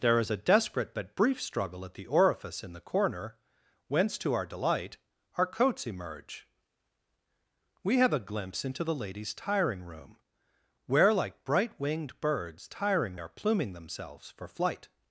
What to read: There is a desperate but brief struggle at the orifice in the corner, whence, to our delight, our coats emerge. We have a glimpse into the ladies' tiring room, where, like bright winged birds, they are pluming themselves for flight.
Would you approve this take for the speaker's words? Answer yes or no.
no